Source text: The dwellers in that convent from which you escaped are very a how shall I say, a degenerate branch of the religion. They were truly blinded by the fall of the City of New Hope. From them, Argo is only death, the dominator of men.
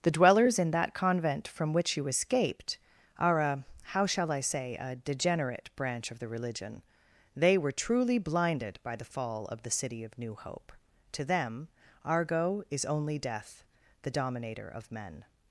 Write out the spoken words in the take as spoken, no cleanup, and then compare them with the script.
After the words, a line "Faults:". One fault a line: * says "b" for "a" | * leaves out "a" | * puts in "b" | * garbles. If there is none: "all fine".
The dwellers in that convent from which you escaped are a how shall I say, a degenerate branch of the religion. They were truly blinded by the fall of the City of New Hope. To them, Argo is only death, the dominator of men.
Faults:
* leaves out "very"
* says "To" for "From"